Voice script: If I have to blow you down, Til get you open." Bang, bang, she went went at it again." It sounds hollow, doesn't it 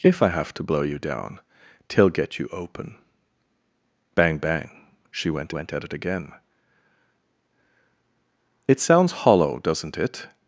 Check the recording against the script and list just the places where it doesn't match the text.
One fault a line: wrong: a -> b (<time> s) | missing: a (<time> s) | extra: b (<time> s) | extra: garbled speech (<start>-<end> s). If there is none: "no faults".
no faults